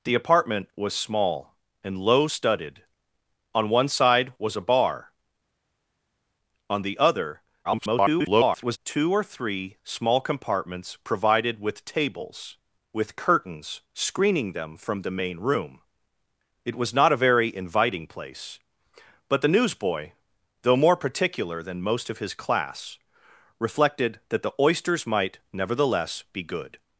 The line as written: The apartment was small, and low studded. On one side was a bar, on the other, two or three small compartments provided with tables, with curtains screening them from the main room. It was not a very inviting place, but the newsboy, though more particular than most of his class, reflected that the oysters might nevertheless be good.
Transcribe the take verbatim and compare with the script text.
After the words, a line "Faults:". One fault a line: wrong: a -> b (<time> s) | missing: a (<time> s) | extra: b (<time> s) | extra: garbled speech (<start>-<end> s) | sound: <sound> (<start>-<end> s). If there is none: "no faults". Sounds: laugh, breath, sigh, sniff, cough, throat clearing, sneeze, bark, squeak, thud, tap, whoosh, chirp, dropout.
The apartment was small, and low studded. On one side was a bar, on the other, [garbled] two or three small compartments provided with tables, with curtains screening them from the main room. It was not a very inviting place, but the newsboy, though more particular than most of his class, reflected that the oysters might nevertheless be good.
Faults:
extra: garbled speech (7.6-8.8 s)